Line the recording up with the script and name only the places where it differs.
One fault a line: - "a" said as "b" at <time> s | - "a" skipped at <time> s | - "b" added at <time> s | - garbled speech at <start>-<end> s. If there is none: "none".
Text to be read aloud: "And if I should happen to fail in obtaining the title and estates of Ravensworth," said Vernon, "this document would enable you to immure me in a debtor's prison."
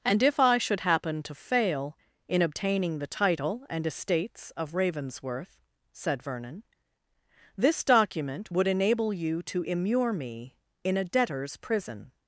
none